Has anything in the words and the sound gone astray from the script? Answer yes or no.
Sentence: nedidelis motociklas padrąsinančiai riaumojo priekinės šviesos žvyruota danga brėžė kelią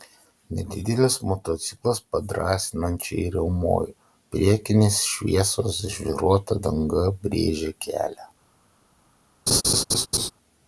yes